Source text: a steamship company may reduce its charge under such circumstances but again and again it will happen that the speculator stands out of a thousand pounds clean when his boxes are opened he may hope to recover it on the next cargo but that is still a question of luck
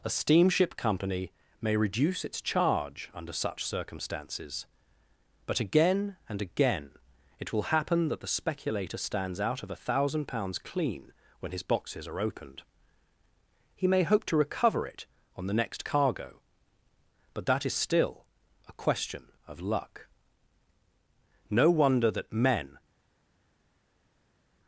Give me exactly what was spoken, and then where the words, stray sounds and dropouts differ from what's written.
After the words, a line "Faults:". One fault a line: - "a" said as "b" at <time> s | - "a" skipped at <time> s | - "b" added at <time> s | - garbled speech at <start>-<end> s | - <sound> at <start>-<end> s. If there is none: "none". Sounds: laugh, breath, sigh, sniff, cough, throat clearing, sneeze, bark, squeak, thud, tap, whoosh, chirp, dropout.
a steamship company may reduce its charge under such circumstances but again and again it will happen that the speculator stands out of a thousand pounds clean when his boxes are opened he may hope to recover it on the next cargo but that is still a question of luck no wonder that men
Faults:
- "no wonder that men" added at 21.5 s